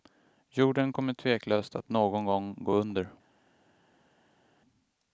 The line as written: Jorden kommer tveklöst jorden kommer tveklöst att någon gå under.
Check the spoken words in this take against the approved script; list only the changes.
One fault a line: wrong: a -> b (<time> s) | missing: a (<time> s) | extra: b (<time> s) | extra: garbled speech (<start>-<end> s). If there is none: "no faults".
missing: jorden kommer tveklöst (1.8 s)
extra: gång (2.2 s)